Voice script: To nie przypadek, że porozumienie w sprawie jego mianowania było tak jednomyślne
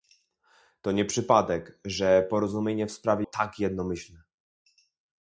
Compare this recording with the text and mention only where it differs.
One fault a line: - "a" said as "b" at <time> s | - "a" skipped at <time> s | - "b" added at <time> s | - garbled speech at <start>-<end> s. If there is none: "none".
- "jego mianowania było" skipped at 3.3 s